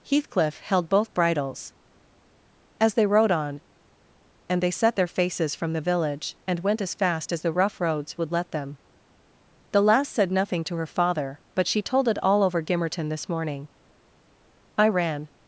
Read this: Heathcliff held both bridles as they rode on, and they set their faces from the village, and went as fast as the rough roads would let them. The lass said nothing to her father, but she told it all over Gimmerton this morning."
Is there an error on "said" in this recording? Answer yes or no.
no